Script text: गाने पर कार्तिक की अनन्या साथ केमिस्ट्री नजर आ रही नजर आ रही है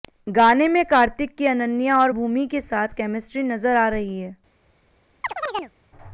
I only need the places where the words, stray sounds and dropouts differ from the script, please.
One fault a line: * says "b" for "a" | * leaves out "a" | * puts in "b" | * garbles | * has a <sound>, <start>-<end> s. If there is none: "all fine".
* says "में" for "पर"
* says "और भूमि के साथ केमिस्ट्री" for "साथ केमिस्ट्री नजर आ रही"
* has a chirp, 5.2-5.7 s